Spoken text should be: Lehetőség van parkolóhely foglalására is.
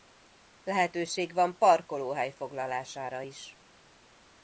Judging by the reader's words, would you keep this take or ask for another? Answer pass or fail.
pass